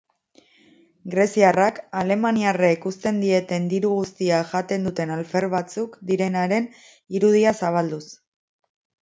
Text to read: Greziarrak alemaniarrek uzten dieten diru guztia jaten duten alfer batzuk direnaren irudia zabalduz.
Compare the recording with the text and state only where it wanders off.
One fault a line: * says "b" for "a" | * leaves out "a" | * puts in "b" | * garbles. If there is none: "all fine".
all fine